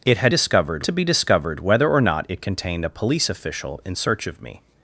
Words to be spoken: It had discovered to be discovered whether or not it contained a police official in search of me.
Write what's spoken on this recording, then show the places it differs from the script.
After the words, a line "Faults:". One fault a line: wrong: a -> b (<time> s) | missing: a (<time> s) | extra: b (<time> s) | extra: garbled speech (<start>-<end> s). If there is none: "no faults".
It had discovered to be discovered whether or not it contained a police official in search of me.
Faults:
no faults